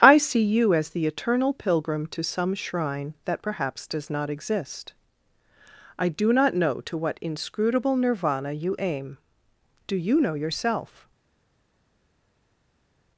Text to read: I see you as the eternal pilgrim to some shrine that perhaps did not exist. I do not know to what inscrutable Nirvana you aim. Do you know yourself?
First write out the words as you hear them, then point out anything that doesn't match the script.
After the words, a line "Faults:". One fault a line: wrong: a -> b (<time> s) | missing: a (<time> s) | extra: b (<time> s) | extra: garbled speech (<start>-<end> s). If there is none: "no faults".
I see you as the eternal pilgrim to some shrine that perhaps does not exist. I do not know to what inscrutable Nirvana you aim. Do you know yourself?
Faults:
wrong: did -> does (3.9 s)